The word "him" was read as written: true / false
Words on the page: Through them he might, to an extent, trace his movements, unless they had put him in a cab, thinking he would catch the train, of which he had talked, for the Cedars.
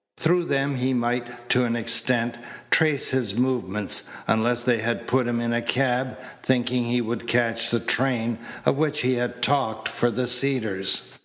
true